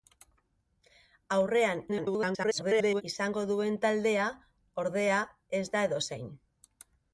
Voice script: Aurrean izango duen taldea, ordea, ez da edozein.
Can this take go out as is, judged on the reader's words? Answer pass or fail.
fail